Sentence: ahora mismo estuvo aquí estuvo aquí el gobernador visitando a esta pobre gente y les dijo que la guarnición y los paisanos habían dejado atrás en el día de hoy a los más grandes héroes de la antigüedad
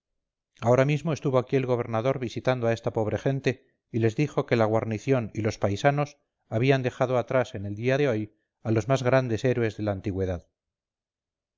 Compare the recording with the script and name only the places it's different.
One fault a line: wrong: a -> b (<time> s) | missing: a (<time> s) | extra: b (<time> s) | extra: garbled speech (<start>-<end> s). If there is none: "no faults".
missing: estuvo aquí (1.6 s)